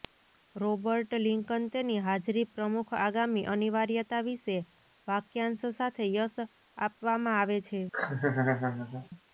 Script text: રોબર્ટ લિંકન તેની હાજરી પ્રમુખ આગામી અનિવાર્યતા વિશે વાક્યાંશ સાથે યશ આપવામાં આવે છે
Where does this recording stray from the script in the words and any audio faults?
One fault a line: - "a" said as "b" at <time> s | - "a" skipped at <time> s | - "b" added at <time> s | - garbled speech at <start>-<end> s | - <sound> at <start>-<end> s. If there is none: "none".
- laugh at 7.9-9.1 s